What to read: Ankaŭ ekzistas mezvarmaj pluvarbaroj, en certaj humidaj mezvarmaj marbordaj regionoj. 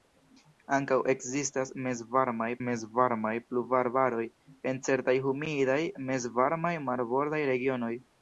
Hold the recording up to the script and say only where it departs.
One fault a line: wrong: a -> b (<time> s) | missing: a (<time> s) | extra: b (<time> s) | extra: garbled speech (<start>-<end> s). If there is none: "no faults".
extra: mezvarmaj (2.7 s)